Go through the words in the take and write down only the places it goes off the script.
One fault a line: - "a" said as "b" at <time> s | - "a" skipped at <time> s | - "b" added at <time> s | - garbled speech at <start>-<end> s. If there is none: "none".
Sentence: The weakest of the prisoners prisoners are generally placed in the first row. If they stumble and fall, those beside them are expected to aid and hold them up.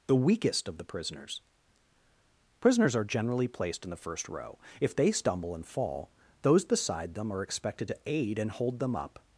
none